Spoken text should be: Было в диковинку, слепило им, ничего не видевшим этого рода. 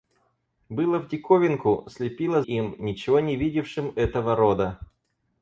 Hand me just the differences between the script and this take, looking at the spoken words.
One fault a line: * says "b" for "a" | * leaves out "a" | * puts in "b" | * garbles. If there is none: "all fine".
all fine